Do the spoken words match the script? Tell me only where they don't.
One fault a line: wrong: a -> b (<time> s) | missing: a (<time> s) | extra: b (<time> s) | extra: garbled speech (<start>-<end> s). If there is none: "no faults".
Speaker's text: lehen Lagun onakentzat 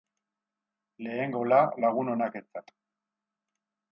extra: gola (1.4 s)